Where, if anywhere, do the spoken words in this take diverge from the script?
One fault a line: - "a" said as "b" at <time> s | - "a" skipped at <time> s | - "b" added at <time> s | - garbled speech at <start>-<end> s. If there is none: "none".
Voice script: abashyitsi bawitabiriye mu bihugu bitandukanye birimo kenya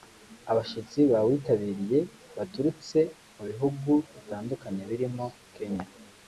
- "baturutse" added at 2.4 s